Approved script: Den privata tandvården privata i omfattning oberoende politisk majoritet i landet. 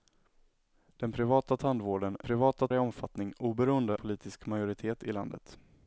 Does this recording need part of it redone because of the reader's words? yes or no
no